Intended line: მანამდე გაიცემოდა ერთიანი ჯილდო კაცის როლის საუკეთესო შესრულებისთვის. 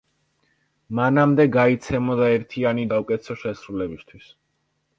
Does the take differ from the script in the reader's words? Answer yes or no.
yes